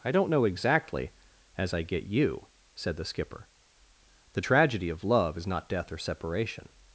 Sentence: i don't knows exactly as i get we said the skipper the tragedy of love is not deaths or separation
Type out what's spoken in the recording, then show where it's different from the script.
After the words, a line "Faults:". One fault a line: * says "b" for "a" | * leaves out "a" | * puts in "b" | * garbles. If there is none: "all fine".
i don't know exactly as i get you said the skipper the tragedy of love is not death or separation
Faults:
* says "know" for "knows"
* says "you" for "we"
* says "death" for "deaths"